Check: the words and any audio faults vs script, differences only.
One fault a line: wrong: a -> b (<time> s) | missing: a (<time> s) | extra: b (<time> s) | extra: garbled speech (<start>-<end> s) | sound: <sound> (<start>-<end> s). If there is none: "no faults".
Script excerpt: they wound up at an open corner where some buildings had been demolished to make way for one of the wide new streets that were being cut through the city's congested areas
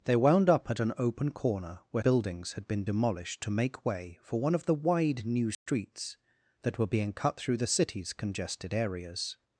missing: some (2.0 s)
sound: dropout (5.5-5.7 s)